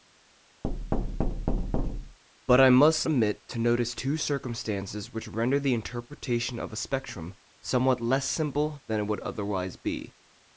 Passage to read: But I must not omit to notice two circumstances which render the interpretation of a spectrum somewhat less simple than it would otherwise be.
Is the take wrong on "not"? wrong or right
wrong